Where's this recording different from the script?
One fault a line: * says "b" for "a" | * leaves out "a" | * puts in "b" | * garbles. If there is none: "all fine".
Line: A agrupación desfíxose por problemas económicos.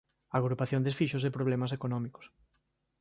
* leaves out "por"